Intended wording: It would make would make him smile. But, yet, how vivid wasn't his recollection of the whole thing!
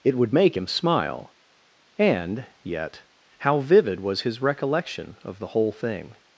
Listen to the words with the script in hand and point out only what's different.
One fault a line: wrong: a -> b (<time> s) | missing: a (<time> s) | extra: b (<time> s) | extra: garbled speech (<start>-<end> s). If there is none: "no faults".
missing: would make (0.6 s)
wrong: But -> And (2.0 s)
wrong: wasn't -> was (4.0 s)